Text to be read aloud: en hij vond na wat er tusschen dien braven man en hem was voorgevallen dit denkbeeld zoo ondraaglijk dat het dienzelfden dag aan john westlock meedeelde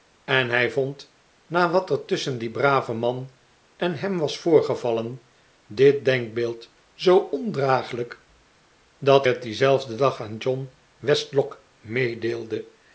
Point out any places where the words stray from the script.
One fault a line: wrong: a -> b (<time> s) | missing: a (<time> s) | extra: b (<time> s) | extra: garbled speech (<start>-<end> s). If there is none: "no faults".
no faults